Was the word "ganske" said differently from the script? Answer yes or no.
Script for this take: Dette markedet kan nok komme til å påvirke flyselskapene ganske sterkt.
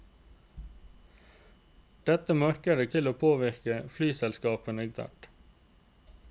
yes